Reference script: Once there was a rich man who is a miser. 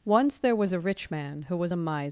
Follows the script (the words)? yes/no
no